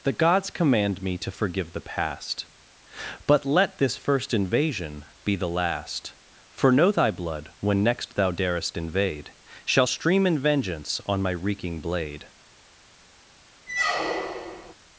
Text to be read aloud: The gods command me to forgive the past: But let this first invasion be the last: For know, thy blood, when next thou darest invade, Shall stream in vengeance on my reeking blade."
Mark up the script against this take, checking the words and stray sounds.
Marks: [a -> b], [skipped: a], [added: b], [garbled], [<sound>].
The gods command me to forgive the past: But let this first invasion be the last: For know, thy blood, when next thou darest invade, Shall stream in vengeance on my reeking blade." [squeak]